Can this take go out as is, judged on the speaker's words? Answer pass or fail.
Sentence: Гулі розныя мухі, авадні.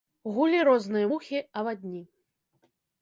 pass